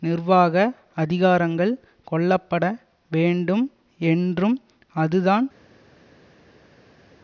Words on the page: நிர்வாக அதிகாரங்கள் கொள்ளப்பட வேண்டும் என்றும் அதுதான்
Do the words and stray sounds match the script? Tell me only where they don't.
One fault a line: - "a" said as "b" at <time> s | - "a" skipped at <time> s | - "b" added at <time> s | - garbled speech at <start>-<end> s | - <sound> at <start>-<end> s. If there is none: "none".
none